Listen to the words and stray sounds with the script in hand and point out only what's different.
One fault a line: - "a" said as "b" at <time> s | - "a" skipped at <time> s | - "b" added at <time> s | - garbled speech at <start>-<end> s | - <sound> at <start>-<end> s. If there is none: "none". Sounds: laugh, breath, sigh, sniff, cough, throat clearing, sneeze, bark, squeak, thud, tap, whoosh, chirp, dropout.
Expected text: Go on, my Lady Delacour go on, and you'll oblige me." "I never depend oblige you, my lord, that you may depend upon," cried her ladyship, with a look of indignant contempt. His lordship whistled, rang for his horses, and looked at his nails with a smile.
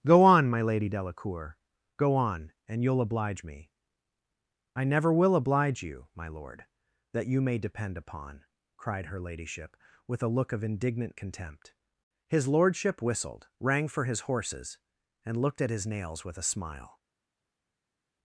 - "depend" said as "will" at 5.1 s